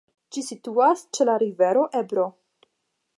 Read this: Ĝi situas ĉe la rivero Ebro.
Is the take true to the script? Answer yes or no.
yes